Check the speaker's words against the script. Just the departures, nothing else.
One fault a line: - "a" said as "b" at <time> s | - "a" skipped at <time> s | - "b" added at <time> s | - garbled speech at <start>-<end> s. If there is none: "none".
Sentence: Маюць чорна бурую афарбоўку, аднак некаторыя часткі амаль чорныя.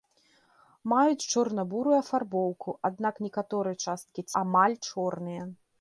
none